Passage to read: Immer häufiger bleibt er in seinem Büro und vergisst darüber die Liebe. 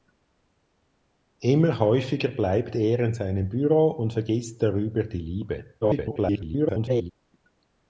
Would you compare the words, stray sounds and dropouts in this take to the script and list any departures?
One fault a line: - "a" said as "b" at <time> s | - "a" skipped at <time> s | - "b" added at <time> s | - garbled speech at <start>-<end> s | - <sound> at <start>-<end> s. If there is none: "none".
- garbled speech at 5.8-7.1 s